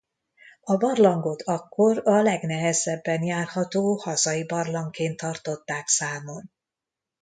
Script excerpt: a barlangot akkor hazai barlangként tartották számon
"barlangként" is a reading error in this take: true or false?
false